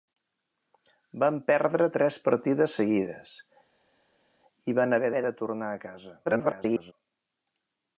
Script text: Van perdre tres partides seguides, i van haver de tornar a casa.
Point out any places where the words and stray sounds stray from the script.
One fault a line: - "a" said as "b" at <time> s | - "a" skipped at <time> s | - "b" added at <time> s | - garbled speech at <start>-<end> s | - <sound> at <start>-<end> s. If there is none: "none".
- "haver" added at 5.1 s
- garbled speech at 6.2-6.9 s